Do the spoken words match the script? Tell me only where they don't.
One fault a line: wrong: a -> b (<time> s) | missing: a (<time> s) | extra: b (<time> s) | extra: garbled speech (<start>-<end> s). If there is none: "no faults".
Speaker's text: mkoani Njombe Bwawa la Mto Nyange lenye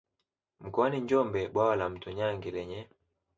no faults